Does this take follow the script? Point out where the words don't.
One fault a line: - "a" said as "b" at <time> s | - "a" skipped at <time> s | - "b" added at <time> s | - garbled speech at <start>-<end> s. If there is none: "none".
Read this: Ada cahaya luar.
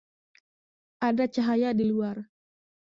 - "di" added at 1.7 s